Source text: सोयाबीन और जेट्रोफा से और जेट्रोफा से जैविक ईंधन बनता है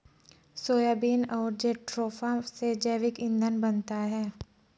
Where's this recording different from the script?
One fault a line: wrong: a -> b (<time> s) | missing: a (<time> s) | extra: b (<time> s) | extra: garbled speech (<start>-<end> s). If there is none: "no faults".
missing: और जेट्रोफा से (2.7 s)